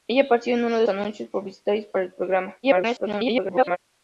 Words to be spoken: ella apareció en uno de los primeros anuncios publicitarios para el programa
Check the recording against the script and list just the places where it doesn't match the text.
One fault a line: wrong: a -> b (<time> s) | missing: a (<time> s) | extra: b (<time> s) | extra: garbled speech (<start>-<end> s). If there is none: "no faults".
missing: los primeros (0.8 s)
extra: garbled speech (2.6-3.8 s)